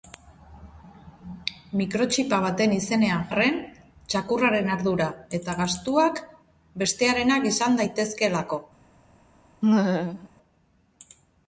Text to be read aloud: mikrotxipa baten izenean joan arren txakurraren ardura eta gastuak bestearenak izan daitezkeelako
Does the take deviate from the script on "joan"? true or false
true